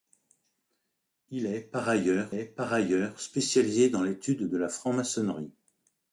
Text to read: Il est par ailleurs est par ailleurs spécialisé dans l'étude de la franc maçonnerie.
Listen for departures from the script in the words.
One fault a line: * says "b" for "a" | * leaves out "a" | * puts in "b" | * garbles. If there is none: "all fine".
all fine